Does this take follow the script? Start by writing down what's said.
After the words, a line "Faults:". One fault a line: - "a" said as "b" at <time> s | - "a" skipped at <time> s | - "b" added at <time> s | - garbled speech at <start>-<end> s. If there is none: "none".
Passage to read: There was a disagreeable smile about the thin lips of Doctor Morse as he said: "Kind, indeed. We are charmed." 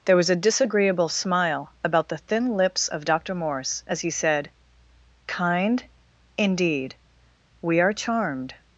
There was a disagreeable smile about the thin lips of Doctor Morse as he said: "Kind, indeed. We are charmed."
Faults:
none